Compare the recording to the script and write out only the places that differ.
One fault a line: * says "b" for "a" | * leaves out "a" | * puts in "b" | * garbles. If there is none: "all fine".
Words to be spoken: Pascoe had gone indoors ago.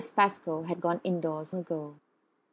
all fine